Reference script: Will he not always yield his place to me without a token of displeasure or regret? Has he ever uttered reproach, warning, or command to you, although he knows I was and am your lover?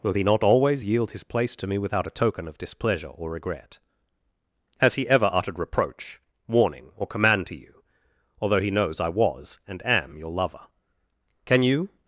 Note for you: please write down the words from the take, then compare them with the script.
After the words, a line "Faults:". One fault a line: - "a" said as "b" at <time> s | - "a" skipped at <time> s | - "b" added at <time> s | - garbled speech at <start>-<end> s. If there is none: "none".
Will he not always yield his place to me without a token of displeasure or regret? Has he ever uttered reproach, warning, or command to you, although he knows I was and am your lover? Can you
Faults:
- "Can you" added at 11.4 s